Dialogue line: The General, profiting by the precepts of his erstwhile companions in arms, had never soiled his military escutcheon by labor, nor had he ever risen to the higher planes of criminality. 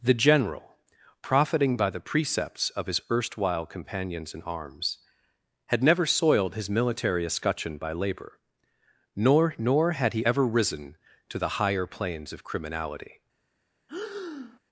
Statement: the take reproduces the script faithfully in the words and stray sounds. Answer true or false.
false